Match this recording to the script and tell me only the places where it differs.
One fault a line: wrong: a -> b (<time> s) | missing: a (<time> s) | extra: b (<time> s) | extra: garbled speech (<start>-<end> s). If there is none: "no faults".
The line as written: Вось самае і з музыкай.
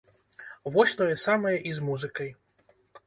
extra: тое (1.0 s)